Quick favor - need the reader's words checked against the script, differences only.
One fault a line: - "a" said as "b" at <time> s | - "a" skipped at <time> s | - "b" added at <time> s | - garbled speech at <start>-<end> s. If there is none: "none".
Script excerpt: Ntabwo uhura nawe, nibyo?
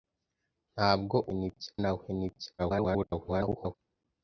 - "uhura" said as "nibyo" at 1.4 s
- garbled speech at 2.6-3.7 s